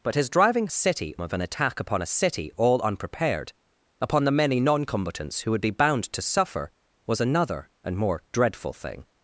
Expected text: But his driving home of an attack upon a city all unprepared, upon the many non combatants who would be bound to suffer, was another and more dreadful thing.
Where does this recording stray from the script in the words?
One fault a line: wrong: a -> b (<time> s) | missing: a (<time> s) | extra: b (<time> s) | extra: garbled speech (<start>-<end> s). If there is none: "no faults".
wrong: home -> city (0.7 s)